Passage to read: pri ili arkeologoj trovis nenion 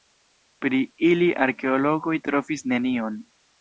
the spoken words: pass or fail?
pass